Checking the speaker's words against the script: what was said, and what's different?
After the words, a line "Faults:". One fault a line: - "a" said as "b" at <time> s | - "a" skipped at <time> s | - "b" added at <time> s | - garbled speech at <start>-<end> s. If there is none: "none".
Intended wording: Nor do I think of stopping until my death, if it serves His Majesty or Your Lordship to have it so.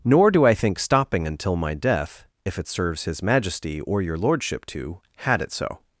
Nor do I think stopping until my death, if it serves His Majesty or Your Lordship to had it so.
Faults:
- "of" skipped at 0.8 s
- "have" said as "had" at 5.2 s